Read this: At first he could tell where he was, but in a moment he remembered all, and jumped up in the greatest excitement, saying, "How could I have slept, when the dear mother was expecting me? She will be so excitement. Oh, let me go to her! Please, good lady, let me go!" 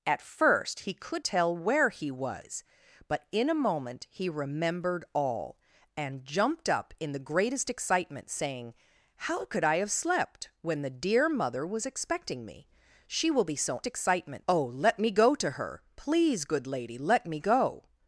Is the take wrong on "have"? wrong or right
right